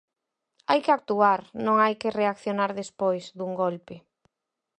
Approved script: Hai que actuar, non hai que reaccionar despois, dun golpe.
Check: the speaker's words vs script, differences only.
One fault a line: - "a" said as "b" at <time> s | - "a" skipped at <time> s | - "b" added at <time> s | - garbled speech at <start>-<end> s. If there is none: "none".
none